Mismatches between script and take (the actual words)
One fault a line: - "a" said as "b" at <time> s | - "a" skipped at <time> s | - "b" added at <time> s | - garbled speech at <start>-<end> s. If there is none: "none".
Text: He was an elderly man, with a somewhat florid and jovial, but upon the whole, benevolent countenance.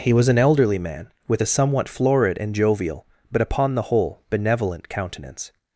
none